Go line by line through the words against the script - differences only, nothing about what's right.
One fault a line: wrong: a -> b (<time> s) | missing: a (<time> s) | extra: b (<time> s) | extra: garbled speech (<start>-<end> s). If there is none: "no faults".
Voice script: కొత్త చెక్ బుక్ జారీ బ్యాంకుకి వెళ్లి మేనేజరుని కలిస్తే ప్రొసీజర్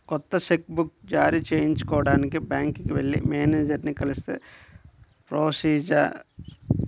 extra: చేయించుకోడానికి (1.5 s)